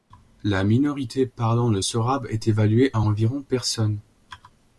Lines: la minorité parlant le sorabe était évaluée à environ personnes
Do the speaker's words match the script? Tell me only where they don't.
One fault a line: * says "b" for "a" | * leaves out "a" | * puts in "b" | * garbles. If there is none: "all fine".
* says "est" for "était"